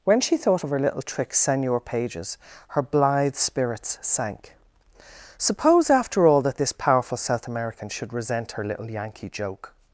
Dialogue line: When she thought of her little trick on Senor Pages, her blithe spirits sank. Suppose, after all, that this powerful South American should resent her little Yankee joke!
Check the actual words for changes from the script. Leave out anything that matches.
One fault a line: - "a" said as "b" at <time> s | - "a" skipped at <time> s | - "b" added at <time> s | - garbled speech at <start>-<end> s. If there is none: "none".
- "on" skipped at 1.3 s